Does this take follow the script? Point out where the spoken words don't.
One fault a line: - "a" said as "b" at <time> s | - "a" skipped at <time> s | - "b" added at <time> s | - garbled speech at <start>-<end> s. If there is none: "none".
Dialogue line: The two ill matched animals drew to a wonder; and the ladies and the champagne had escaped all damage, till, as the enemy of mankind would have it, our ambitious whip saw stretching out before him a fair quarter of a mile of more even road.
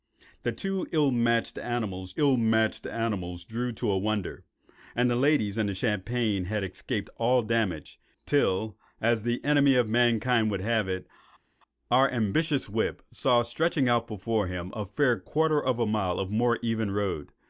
- "ill matched animals" added at 2.2 s